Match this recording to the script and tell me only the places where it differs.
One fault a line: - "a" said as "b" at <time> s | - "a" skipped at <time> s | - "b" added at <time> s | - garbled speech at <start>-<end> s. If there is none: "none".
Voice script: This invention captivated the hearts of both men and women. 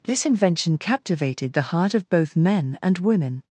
- "hearts" said as "heart" at 1.6 s